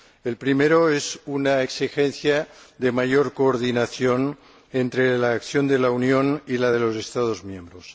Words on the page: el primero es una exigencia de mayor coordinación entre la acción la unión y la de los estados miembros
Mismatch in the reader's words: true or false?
true